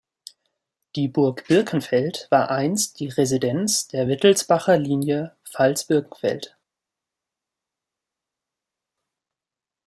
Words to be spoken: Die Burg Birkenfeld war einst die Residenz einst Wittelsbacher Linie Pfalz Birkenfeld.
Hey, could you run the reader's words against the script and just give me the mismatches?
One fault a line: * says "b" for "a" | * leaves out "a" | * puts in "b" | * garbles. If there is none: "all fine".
* says "der" for "einst"